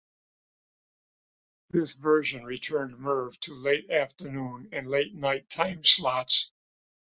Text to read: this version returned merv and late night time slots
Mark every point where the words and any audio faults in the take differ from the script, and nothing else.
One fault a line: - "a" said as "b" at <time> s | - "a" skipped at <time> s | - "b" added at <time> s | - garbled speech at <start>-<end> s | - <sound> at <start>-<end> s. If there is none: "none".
- "to late afternoon" added at 3.4 s